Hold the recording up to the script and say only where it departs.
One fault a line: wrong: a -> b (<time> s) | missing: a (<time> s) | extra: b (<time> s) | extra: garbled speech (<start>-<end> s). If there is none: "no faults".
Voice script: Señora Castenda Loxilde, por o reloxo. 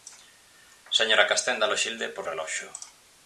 no faults